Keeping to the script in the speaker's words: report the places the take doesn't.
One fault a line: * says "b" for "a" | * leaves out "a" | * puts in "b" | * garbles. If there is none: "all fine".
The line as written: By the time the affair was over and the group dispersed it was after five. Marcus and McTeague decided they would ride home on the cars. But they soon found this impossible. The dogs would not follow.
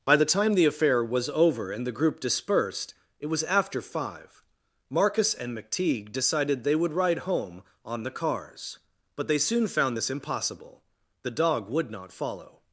* says "dog" for "dogs"